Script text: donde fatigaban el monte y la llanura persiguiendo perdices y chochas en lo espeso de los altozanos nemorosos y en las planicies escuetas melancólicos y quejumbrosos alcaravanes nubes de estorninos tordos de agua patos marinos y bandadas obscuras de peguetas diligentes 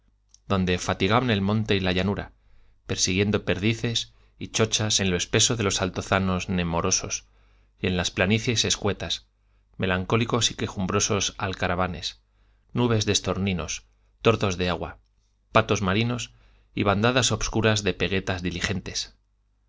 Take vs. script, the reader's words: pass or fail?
pass